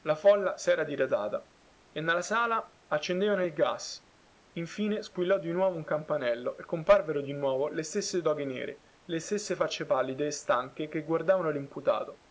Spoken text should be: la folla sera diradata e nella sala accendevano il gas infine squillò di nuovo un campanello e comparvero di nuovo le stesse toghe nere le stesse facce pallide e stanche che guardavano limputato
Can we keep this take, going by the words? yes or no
yes